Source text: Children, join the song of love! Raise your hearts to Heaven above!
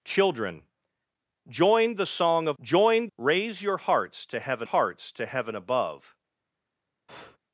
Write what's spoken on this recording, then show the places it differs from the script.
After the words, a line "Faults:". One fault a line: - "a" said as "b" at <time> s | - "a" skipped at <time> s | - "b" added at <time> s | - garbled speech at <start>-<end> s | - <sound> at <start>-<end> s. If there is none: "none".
Children, join the song of join! Raise your hearts to Heaven hearts to Heaven above!
Faults:
- "love" said as "join" at 2.6 s
- "hearts to Heaven" added at 4.6 s
- breath at 7.1-7.4 s